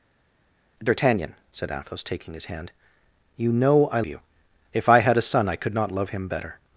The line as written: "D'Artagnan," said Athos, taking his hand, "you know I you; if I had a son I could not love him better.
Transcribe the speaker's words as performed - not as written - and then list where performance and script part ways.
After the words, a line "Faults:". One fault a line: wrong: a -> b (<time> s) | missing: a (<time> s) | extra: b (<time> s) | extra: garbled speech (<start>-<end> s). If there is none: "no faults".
"D'Artagnan," said Athos, taking his hand, "you know I you; if I had a son I could not love him better.
Faults:
no faults